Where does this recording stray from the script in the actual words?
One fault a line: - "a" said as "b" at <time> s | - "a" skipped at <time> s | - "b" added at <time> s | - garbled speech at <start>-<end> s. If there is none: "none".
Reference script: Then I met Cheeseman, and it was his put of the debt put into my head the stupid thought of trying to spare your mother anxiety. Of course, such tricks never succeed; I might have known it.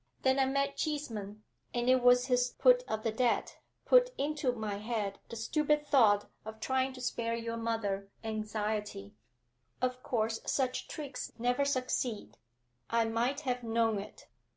none